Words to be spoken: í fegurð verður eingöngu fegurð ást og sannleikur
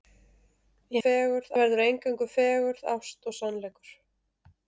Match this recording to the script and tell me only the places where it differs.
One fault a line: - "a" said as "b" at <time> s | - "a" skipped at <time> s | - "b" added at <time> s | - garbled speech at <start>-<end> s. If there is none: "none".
none